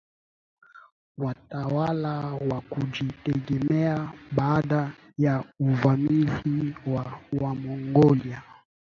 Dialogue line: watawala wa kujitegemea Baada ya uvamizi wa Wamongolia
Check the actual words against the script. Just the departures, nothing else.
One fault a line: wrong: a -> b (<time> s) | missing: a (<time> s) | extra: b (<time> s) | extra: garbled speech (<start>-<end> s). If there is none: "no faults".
no faults